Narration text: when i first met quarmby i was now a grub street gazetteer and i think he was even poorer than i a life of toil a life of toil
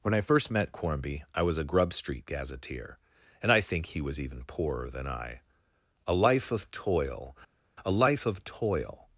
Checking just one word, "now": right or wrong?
wrong